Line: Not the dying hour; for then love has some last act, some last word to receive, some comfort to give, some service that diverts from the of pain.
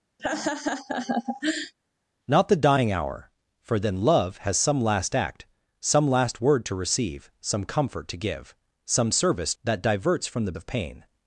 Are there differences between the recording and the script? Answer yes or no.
no